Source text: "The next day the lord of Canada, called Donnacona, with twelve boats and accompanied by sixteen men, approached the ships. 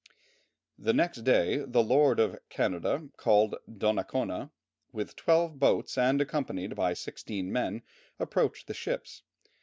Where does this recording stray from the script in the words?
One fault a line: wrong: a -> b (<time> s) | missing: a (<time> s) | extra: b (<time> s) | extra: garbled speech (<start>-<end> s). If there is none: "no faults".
no faults